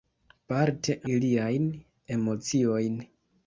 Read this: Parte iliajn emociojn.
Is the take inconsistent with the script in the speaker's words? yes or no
no